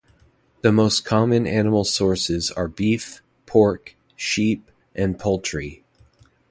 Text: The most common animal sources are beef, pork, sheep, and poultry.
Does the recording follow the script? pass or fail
pass